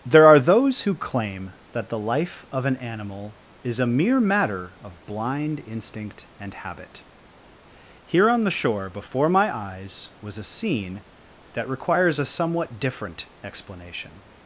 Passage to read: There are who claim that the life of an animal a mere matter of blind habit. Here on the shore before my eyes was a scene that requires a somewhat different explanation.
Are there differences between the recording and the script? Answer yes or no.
yes